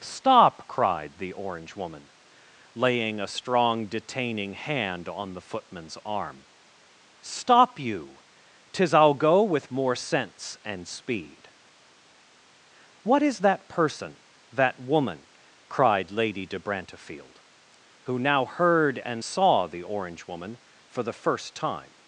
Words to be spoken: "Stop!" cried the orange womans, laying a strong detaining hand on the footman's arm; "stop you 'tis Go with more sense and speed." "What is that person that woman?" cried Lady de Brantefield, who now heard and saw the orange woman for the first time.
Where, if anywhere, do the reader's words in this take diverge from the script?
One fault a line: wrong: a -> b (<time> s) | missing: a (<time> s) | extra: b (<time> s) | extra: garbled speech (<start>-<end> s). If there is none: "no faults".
wrong: womans -> woman (1.8 s)
extra: I'll (8.9 s)